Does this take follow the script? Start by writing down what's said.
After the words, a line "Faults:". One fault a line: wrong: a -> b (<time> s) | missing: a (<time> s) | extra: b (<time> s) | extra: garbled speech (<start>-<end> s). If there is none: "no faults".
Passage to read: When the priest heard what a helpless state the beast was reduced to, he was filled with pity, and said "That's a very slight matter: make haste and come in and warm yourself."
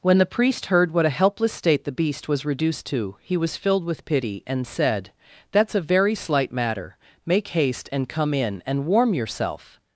When the priest heard what a helpless state the beast was reduced to, he was filled with pity, and said "That's a very slight matter: make haste and come in and warm yourself."
Faults:
no faults